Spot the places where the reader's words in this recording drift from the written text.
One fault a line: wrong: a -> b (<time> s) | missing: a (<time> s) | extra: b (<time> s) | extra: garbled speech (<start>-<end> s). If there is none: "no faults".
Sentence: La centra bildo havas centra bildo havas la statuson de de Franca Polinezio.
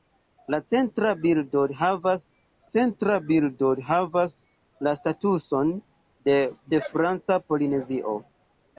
no faults